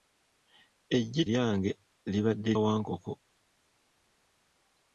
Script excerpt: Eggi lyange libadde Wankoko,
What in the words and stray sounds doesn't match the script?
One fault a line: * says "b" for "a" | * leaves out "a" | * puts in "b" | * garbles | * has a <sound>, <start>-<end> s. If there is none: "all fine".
all fine